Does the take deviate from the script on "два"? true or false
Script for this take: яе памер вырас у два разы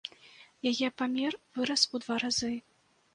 false